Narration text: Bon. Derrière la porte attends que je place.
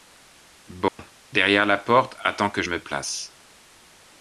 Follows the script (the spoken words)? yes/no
no